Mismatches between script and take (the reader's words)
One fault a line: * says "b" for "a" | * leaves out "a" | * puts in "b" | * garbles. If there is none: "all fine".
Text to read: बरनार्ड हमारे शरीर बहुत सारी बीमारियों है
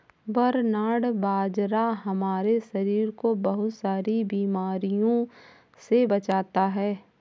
* puts in "बाजरा"
* puts in "को"
* puts in "से बचाता"